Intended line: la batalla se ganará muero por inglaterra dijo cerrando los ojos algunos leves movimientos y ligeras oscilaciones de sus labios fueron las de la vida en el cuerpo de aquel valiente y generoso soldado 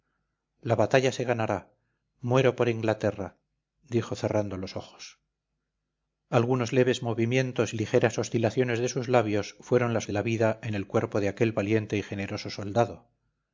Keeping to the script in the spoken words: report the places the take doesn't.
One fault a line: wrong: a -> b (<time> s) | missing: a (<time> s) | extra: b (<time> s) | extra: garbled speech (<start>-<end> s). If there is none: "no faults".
no faults